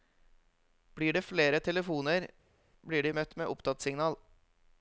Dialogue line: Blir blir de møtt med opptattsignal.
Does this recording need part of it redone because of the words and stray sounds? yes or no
yes